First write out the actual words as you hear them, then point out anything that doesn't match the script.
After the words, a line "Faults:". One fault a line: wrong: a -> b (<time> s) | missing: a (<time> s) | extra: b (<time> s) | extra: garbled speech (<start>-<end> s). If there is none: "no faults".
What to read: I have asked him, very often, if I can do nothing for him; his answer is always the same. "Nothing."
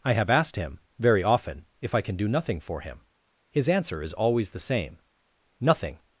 I have asked him, very often, if I can do nothing for him; his answer is always the same. "Nothing."
Faults:
no faults